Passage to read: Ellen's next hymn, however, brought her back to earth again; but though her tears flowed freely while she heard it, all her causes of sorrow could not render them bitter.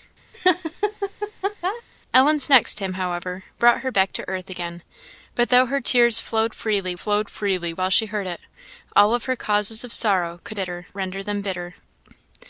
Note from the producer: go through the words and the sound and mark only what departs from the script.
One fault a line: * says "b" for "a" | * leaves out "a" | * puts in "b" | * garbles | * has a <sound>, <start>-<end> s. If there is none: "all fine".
* has a laugh, 0.3-1.8 s
* puts in "flowed freely"
* says "bitter" for "not"